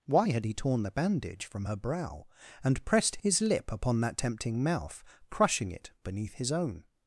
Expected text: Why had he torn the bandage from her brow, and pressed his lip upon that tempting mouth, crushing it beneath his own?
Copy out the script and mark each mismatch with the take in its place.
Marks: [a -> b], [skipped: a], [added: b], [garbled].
Why had he torn the bandage from her brow, and pressed his lip upon that tempting mouth, crushing it beneath his own?